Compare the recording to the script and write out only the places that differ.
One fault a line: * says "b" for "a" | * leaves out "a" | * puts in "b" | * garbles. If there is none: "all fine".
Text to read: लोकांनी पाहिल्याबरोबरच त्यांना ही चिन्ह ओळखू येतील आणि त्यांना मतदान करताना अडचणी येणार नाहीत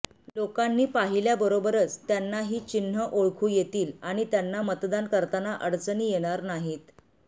all fine